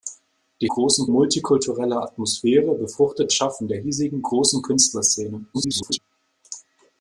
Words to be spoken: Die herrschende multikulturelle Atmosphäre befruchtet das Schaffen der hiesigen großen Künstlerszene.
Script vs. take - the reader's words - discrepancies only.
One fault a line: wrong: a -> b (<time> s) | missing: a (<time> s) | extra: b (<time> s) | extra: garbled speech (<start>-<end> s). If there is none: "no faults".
wrong: herrschende -> großen (0.7 s)
missing: das (3.3 s)
extra: garbled speech (5.5-6.0 s)